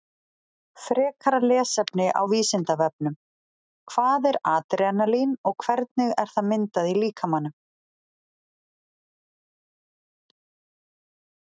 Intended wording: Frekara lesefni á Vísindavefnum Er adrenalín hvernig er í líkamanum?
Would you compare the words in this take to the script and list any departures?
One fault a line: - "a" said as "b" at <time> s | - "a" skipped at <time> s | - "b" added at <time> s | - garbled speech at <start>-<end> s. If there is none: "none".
- "Hvað" added at 3.9 s
- "og" added at 5.5 s
- "það myndað" added at 6.4 s